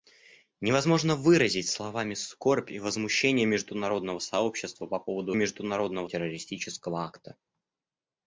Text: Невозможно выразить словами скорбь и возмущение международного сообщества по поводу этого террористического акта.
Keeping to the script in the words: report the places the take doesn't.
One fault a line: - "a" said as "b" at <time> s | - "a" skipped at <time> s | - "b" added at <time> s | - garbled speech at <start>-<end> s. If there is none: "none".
- "этого" said as "международного" at 5.3 s